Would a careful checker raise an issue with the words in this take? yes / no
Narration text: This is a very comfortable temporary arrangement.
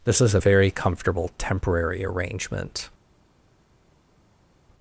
no